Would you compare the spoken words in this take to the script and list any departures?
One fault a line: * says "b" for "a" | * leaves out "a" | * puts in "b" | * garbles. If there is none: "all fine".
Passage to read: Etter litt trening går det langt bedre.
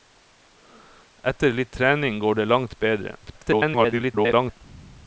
* garbles